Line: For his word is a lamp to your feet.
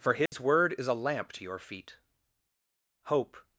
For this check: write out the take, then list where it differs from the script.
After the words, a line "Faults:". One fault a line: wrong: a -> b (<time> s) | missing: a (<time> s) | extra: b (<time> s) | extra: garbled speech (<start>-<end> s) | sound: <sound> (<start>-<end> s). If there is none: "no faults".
For his word is a lamp to your feet. Hope
Faults:
sound: dropout (0.3-0.3 s)
extra: Hope (3.0 s)